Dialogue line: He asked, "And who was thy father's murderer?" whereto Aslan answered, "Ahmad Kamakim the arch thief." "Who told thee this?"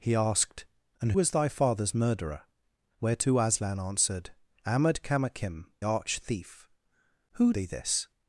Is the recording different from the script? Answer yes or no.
yes